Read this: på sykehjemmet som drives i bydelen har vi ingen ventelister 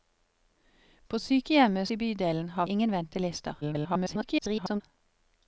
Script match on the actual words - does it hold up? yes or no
no